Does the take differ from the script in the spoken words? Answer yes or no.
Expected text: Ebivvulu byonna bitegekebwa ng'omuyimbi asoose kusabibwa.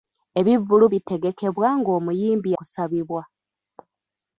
yes